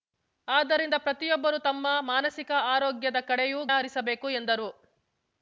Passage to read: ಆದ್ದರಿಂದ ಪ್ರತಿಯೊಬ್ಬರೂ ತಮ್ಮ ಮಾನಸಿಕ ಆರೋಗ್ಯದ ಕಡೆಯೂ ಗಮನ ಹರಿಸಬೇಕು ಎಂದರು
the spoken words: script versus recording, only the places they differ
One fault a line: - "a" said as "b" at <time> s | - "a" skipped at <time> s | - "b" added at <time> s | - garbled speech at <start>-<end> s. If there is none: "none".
- "ಗಮನ" skipped at 3.6 s